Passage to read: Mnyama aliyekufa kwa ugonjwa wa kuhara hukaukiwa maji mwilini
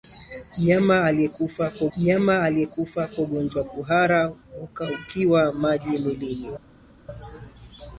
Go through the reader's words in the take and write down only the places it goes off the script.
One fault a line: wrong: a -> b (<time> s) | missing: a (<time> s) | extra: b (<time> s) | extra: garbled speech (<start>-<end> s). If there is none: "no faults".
extra: mnyama aliyekufa kwa (2.0 s)